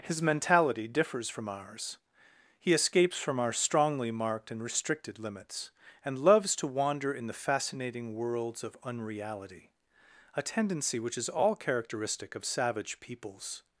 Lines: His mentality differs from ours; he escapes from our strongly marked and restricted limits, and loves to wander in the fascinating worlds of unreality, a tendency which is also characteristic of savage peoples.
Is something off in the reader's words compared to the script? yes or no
yes